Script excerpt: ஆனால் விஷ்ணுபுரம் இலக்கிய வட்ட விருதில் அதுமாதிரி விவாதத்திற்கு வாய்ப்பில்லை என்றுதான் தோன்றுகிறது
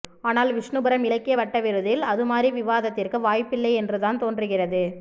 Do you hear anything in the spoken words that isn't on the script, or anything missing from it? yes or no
no